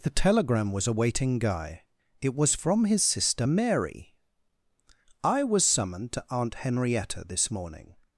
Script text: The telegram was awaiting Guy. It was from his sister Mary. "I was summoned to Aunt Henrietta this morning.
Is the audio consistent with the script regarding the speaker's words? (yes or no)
yes